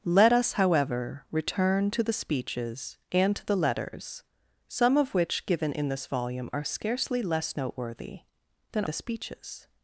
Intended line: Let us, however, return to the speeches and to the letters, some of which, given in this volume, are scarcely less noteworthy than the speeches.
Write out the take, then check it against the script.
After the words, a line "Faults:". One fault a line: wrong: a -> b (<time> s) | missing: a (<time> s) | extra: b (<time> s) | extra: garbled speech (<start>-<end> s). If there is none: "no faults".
Let us, however, return to the speeches and to the letters, some of which, given in this volume, are scarcely less noteworthy than the speeches.
Faults:
no faults